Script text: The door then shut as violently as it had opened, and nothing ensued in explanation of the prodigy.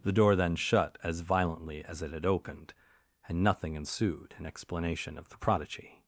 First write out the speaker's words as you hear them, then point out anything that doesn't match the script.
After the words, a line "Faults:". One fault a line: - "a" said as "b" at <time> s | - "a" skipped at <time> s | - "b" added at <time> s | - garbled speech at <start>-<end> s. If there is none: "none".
The door then shut as violently as it had opened, and nothing ensued in explanation of the prodigy.
Faults:
none